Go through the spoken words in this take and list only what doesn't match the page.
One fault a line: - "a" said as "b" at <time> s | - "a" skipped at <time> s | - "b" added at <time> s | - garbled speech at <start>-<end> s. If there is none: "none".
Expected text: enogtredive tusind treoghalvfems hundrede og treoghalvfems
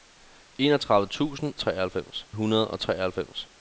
none